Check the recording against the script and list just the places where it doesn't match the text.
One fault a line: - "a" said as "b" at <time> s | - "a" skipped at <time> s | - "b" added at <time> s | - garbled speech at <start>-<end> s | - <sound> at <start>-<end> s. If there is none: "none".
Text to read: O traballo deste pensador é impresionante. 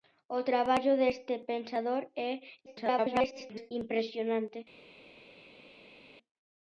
- garbled speech at 2.7-3.7 s